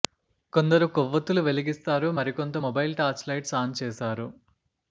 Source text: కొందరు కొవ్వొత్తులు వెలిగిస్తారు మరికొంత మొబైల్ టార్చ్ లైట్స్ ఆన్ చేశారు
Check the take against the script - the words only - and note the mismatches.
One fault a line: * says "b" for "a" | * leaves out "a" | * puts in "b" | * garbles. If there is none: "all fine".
all fine